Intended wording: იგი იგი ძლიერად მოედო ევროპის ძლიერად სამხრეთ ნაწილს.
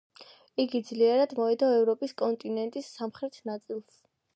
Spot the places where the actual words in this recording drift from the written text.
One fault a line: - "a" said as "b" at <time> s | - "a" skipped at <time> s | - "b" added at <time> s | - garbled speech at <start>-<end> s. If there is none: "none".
- "იგი" skipped at 0.8 s
- "ძლიერად" said as "კონტინენტის" at 2.2 s